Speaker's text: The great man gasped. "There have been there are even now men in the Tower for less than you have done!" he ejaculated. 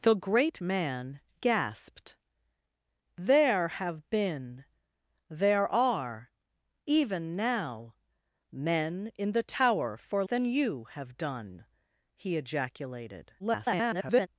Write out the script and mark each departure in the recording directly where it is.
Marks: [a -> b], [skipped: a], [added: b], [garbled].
The great man gasped. "There have been there are even now men in the Tower for [skipped: less] than you have done!" he ejaculated. [garbled]